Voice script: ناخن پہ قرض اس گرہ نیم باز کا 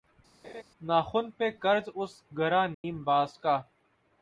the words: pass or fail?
pass